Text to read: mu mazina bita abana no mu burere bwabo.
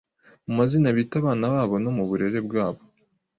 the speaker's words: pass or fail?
fail